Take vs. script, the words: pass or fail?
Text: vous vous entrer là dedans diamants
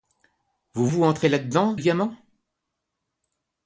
pass